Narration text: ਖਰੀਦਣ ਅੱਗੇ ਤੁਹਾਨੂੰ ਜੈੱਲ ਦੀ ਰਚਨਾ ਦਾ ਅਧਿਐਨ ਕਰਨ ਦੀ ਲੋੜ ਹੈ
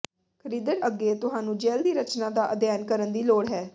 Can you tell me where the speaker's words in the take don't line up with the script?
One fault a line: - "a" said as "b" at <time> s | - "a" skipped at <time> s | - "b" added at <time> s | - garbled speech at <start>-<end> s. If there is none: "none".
none